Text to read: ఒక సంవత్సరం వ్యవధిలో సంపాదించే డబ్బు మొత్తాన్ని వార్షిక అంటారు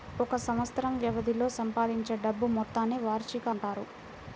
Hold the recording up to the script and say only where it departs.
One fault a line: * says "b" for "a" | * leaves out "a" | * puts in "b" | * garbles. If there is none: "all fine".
all fine